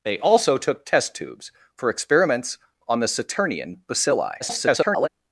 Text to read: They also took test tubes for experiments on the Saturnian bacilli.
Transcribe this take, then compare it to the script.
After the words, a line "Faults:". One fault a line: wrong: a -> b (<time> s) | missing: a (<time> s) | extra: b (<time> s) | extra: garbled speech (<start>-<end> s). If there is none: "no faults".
They also took test tubes for experiments on the Saturnian bacilli. [garbled]
Faults:
extra: garbled speech (4.4-5.1 s)